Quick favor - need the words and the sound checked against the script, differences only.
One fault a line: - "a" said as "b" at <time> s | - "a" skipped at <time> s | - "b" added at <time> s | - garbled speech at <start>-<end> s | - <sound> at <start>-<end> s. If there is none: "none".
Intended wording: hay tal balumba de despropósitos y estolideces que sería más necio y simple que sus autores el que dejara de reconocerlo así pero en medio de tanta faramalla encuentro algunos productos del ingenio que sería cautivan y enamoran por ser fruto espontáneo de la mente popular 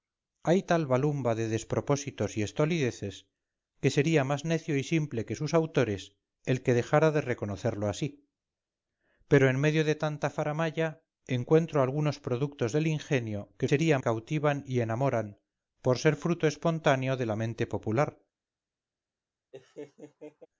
- laugh at 19.5-20.5 s